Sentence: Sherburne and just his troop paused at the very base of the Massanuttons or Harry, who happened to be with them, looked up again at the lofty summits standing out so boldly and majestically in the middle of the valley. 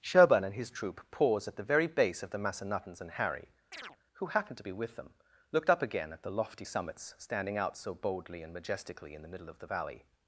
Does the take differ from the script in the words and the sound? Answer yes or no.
yes